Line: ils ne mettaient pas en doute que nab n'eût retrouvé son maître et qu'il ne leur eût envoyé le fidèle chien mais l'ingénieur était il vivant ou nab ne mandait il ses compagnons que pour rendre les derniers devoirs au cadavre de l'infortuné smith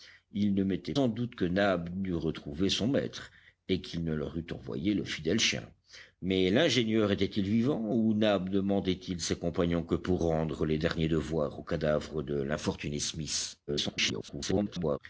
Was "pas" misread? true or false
true